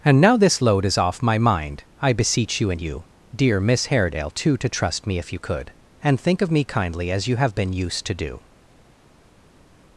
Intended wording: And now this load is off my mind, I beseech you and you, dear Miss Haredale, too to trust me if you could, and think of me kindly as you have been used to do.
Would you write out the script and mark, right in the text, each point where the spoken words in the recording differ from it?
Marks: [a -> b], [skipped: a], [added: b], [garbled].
And now this load is off my mind, I beseech you and you, dear Miss Haredale, too to trust me if you could, and think of me kindly as you have been used to do.